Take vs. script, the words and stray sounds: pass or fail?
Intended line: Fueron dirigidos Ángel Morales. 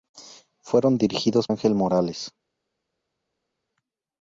pass